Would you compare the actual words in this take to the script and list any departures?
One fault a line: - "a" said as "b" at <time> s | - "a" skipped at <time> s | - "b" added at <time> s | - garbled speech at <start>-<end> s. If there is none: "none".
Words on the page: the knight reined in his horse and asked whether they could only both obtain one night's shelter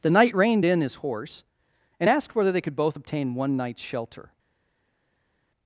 - "only" skipped at 2.7 s